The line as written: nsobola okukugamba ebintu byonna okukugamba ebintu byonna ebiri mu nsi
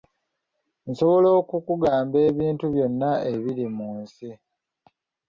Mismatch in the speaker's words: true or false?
true